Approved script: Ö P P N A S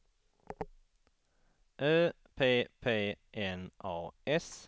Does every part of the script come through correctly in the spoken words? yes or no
yes